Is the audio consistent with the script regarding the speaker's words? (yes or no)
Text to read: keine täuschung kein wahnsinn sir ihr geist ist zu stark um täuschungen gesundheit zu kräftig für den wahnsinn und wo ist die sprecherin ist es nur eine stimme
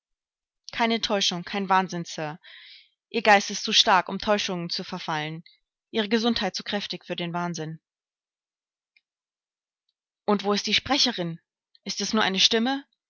no